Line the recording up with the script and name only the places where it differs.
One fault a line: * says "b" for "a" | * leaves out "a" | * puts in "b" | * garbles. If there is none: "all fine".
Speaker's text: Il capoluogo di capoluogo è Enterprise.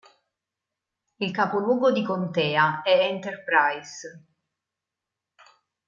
* says "contea" for "capoluogo"